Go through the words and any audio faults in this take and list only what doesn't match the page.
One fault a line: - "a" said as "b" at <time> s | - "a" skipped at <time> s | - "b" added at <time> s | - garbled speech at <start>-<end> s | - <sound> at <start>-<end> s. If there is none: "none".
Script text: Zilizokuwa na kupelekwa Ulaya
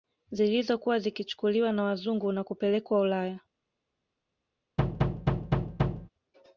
- "zikichukuliwa na wazungu" added at 1.0 s
- thud at 4.8-6.1 s